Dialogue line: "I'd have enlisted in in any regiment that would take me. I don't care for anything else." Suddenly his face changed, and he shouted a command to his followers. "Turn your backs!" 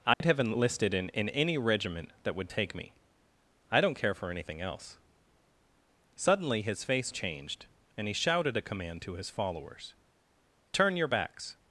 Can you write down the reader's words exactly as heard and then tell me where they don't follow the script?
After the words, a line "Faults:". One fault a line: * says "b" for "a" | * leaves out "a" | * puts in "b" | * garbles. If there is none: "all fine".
"I'd have enlisted in in any regiment that would take me. I don't care for anything else." Suddenly his face changed, and he shouted a command to his followers. "Turn your backs!"
Faults:
all fine